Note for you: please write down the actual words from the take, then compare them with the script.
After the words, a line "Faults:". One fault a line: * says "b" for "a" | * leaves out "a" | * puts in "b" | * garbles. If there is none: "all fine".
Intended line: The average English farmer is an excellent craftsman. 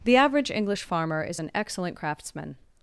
The average English farmer is an excellent craftsman.
Faults:
all fine